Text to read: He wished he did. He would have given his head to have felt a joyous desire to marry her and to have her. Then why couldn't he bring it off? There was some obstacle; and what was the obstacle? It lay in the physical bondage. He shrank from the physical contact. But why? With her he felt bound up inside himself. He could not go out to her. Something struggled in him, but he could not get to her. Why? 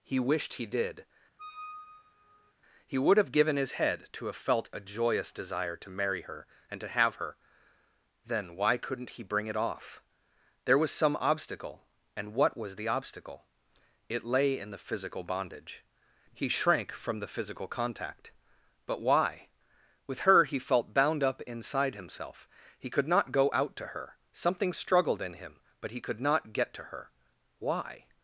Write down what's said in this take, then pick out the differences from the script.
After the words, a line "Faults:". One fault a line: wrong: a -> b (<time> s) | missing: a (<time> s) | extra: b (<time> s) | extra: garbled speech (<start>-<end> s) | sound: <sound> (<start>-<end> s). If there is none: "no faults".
He wished he did. He would have given his head to have felt a joyous desire to marry her and to have her. Then why couldn't he bring it off? There was some obstacle; and what was the obstacle? It lay in the physical bondage. He shrank from the physical contact. But why? With her he felt bound up inside himself. He could not go out to her. Something struggled in him, but he could not get to her. Why?
Faults:
sound: squeak (1.4-2.5 s)